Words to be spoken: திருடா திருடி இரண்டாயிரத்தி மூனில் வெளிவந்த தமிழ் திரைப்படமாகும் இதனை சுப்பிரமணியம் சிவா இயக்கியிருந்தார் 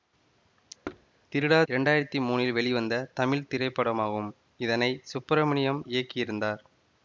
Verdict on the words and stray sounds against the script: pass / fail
fail